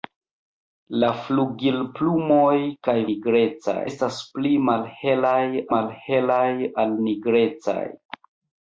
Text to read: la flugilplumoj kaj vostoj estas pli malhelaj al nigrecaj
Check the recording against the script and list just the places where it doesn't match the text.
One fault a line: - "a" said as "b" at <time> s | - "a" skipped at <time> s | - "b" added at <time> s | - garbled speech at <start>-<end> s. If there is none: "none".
- "vostoj" said as "nigrecaj" at 3.1 s
- "malhelaj" added at 5.8 s